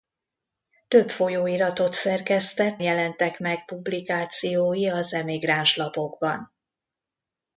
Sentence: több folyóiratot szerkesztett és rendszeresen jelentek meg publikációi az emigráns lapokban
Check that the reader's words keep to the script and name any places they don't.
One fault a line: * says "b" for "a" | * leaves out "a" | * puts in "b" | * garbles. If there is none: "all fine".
* leaves out "és rendszeresen"